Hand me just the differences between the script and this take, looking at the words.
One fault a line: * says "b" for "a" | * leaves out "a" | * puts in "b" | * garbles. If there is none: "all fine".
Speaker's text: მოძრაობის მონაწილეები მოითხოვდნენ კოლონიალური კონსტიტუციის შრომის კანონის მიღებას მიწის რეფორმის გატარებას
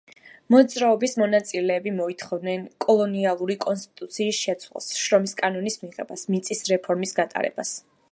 * puts in "შეცვლას"